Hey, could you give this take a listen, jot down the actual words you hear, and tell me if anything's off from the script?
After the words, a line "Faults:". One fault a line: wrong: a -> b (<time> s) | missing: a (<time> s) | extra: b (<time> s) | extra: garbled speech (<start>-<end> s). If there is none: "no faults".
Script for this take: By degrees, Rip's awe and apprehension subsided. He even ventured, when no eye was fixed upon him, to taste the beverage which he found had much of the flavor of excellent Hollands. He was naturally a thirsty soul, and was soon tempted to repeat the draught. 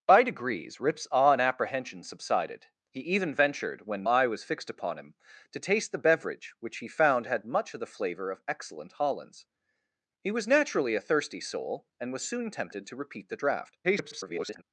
By degrees, Rip's awe and apprehension subsided. He even ventured, when eye was fixed upon him, to taste the beverage which he found had much of the flavor of excellent Hollands. He was naturally a thirsty soul, and was soon tempted to repeat the draught. [garbled]
Faults:
missing: no (4.1 s)
extra: garbled speech (13.8-14.6 s)